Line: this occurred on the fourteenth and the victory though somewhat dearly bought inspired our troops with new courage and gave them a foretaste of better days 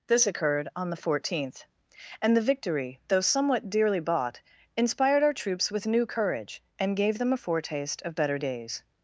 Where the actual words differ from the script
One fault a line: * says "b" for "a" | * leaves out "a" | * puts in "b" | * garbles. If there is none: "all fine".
all fine